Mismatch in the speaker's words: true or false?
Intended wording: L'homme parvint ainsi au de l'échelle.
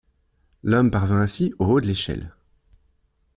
true